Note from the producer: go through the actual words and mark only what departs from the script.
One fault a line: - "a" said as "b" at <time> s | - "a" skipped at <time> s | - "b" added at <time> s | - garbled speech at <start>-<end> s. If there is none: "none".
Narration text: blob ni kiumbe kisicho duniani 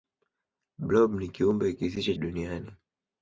none